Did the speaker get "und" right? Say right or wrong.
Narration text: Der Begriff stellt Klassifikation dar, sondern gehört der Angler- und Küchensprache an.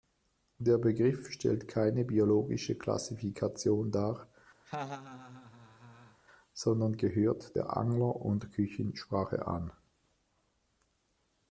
right